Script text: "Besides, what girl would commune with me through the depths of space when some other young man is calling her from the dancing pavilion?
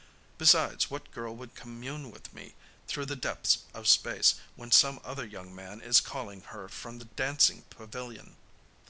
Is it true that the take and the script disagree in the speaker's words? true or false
false